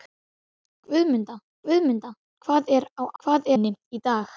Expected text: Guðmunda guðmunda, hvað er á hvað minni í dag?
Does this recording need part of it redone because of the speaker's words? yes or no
no